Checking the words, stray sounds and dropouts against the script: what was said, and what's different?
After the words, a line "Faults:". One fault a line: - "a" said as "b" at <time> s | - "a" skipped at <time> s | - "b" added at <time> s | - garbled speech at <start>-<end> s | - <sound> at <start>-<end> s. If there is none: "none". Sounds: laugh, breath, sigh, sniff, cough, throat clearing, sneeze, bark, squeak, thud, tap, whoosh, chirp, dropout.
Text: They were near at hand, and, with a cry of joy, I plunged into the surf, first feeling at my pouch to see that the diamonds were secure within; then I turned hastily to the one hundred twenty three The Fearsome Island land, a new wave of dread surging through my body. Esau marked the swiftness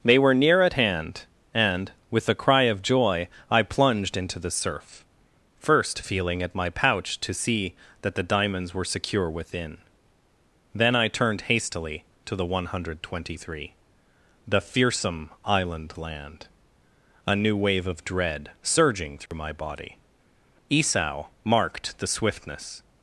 They were near at hand, and, with a cry of joy, I plunged into the surf, first feeling at my pouch to see that the diamonds were secure within; then I turned hastily to the one hundred twenty three The Fearsome Island land, a new wave of dread surging through my body. Esau marked the swiftness
Faults:
- dropout at 19.3-19.3 s